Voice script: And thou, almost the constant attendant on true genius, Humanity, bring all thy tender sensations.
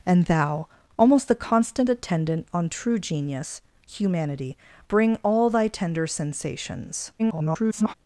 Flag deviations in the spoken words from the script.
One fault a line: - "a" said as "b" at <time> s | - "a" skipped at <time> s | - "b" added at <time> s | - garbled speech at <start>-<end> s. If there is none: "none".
- garbled speech at 7.2-7.9 s